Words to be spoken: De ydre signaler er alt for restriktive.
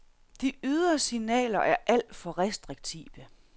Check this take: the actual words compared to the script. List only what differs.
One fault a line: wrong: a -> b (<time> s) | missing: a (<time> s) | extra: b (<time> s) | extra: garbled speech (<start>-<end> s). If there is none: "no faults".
no faults